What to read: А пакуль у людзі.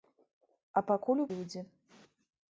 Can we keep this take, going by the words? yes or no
yes